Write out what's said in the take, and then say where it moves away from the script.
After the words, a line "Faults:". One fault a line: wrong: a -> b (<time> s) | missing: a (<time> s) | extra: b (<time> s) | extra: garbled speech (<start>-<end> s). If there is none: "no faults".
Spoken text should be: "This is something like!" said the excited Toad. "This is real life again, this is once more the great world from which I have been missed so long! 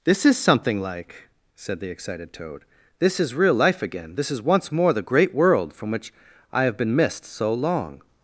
"This is something like!" said the excited Toad. "This is real life again, this is once more the great world from which I have been missed so long!
Faults:
no faults